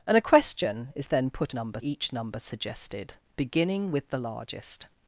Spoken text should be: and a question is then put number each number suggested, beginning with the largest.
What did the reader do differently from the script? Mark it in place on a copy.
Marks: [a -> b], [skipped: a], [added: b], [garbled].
and a question is then put number each number suggested, beginning with the largest.